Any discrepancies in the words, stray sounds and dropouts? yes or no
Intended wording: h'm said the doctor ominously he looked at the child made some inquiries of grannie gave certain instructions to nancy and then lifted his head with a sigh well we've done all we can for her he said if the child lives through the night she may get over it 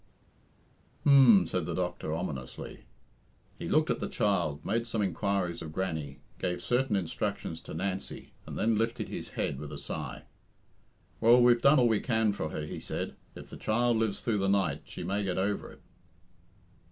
no